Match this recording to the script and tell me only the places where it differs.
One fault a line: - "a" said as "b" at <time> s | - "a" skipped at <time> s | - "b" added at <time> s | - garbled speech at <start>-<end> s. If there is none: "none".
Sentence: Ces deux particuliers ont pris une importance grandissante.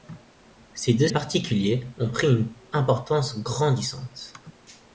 none